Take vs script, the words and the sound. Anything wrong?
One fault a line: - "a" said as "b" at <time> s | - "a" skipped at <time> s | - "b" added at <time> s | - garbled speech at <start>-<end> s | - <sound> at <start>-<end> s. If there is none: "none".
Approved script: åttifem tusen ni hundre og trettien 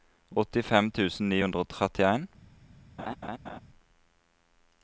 - laugh at 3.0-3.6 s